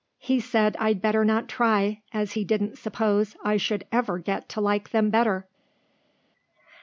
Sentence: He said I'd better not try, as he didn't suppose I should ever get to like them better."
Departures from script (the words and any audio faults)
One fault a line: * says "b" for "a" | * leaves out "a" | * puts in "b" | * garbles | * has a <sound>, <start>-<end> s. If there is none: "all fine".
all fine